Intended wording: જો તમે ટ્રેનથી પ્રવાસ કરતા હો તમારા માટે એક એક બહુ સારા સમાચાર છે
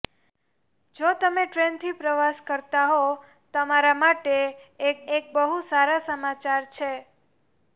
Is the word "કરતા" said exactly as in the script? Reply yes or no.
yes